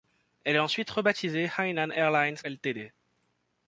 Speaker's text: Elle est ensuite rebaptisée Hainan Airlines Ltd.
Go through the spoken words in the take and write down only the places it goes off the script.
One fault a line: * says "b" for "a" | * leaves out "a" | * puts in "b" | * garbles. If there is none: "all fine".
all fine